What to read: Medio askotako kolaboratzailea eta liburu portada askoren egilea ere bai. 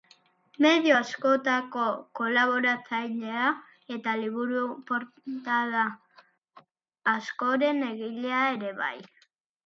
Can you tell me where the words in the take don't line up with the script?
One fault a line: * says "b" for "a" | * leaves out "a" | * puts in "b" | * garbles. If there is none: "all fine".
all fine